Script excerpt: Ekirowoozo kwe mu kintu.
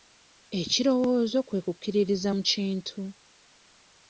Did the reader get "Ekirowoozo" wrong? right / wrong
right